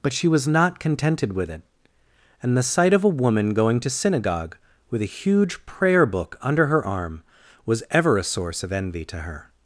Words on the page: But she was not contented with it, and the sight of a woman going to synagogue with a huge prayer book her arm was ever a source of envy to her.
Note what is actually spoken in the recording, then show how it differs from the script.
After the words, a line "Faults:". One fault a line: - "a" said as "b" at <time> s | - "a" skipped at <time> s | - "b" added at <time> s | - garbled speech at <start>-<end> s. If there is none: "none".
But she was not contented with it, and the sight of a woman going to synagogue with a huge prayer book under her arm was ever a source of envy to her.
Faults:
- "under" added at 6.4 s